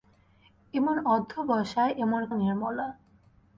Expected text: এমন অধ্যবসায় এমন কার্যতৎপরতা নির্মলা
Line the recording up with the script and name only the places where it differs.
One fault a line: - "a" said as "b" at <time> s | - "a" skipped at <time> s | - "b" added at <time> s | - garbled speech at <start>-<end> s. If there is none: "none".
- "কার্যতৎপরতা" skipped at 2.2 s